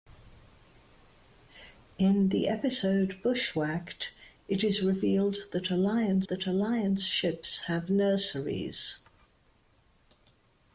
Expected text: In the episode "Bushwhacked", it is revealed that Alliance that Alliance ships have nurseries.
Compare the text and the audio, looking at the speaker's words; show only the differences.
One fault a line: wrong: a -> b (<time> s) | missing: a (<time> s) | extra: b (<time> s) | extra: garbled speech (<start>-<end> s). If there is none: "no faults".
no faults